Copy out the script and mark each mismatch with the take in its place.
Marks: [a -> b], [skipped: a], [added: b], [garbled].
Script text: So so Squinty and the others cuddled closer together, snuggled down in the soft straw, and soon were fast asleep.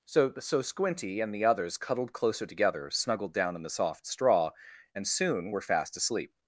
So so Squinty and the others cuddled closer together, snuggled down in the soft straw, and soon were fast asleep.